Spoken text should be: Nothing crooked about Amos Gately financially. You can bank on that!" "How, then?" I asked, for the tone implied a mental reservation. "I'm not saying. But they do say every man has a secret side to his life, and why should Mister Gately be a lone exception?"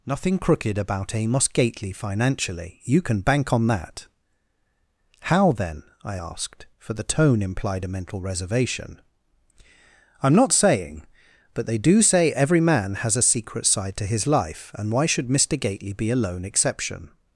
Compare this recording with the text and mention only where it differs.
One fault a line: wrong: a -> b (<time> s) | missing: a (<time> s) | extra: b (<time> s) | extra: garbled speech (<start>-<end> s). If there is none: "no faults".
no faults